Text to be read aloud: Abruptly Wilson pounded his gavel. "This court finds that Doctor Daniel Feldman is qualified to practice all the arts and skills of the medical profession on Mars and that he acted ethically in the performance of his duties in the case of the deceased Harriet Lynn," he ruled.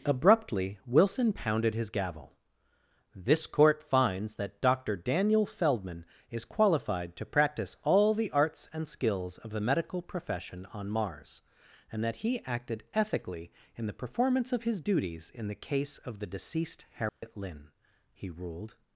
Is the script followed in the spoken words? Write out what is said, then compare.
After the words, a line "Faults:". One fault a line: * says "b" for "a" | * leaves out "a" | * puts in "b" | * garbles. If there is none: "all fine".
Abruptly Wilson pounded his gavel. "This court finds that Doctor Daniel Feldman is qualified to practice all the arts and skills of the medical profession on Mars and that he acted ethically in the performance of his duties in the case of the deceased Harriet Lynn," he ruled.
Faults:
all fine